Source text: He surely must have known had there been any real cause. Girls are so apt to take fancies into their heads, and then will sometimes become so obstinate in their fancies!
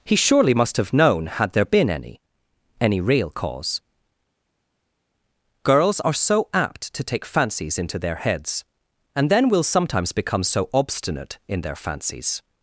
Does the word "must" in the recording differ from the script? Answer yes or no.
no